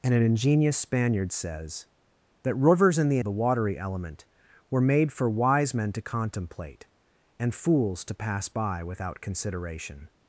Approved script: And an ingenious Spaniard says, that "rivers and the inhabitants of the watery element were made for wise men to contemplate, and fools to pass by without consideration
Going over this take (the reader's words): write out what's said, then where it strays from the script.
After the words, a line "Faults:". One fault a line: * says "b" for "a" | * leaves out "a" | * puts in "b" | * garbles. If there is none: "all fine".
And an ingenious Spaniard says, that "rivers and the the watery element were made for wise men to contemplate, and fools to pass by without consideration
Faults:
* leaves out "inhabitants of"